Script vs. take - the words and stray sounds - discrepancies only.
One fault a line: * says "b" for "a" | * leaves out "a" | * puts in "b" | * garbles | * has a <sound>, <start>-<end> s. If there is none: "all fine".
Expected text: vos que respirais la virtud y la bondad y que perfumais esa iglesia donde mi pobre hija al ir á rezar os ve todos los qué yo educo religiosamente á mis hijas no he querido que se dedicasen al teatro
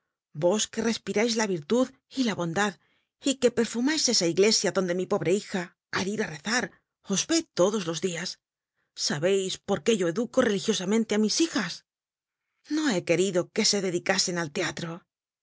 * puts in "dias sabeis por"